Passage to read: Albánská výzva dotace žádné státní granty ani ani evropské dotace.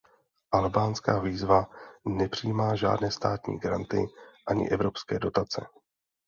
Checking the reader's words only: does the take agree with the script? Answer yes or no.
no